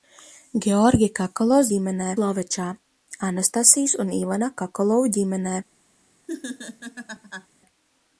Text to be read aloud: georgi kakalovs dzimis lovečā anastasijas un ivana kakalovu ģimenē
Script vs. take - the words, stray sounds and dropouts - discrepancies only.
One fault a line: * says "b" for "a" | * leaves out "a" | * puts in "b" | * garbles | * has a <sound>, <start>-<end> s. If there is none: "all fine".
* says "ģimenē" for "dzimis"
* has a laugh, 6.3-7.5 s